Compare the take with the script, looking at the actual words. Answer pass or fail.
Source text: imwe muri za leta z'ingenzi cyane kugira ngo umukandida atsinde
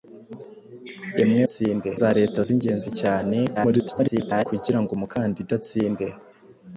fail